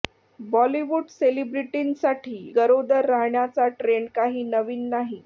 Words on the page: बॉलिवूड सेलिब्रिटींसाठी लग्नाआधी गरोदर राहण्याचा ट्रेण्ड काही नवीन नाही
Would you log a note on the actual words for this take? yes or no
yes